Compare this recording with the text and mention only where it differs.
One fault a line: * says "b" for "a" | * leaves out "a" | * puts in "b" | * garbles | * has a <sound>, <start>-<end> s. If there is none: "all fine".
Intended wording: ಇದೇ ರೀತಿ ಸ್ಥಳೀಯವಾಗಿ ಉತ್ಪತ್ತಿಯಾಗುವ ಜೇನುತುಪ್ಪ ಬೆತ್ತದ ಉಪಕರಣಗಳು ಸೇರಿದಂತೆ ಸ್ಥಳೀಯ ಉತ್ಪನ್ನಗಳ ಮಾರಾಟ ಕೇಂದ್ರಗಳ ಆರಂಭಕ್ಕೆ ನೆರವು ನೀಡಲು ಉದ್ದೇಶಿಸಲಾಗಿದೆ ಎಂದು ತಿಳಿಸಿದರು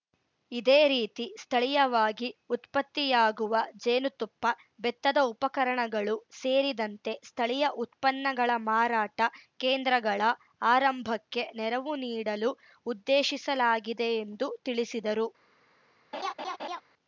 * has a laugh, 16.1-16.8 s